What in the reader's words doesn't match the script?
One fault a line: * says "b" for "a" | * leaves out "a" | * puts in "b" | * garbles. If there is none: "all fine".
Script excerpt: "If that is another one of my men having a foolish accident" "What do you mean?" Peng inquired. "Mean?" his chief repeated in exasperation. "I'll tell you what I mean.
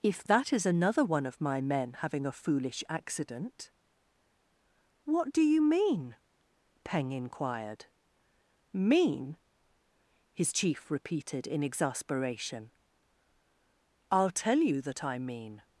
* says "that" for "what"